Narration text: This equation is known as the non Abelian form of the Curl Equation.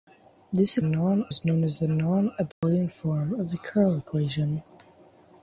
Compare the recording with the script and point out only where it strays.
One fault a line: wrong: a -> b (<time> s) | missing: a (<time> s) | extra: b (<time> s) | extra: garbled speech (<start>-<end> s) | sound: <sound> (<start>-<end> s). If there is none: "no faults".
wrong: equation -> non (0.8 s)
sound: dropout (2.5-2.6 s)